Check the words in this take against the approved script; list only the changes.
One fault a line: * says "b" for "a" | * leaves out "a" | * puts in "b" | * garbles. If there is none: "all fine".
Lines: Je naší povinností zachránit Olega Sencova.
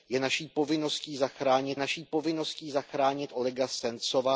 * puts in "naší povinností zachránit"